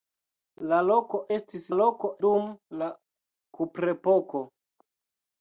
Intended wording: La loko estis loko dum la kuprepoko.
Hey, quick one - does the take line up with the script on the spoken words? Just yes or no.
yes